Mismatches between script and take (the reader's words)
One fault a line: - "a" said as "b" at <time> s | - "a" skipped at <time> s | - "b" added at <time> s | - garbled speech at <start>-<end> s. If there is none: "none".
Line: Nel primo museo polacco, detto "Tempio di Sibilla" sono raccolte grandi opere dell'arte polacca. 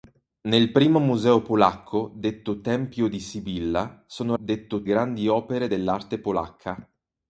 - "raccolte" said as "detto" at 4.4 s